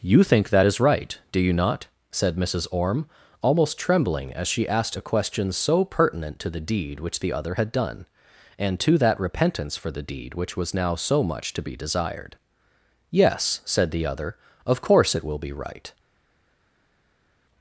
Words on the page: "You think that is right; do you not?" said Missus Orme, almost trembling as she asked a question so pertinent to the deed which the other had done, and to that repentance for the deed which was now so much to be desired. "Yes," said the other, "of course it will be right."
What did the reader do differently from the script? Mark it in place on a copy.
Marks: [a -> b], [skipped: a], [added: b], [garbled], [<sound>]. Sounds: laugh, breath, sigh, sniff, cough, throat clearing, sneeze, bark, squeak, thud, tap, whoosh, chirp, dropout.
"You think that is right; do you not?" said Missus Orme, almost trembling as she asked a question so pertinent to the deed which the other had done, and to that repentance for the deed which was now so much to be desired. "Yes," said the other, "of course it will be right."